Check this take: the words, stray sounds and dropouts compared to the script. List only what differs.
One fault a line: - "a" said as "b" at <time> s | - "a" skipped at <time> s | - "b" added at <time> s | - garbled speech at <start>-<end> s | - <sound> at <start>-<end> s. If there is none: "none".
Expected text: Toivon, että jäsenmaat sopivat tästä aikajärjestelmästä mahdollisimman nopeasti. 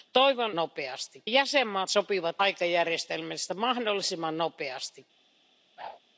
- "että" said as "nopeasti" at 0.5 s
- "tästä" skipped at 2.4 s
- whoosh at 5.8-6.0 s